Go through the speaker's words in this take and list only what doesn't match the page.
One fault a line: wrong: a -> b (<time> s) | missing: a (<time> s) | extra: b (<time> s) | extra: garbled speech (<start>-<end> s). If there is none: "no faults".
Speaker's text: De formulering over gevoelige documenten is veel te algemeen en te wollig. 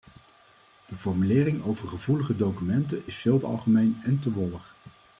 no faults